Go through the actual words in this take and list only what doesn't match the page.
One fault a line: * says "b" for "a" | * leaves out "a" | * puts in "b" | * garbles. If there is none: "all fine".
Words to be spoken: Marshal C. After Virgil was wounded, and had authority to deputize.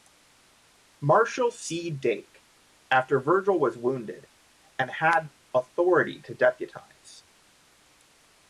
* puts in "Dake"